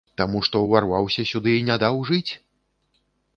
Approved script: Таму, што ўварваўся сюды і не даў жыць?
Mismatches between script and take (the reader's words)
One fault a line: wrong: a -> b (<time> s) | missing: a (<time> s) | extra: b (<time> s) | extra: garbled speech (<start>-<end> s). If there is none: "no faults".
no faults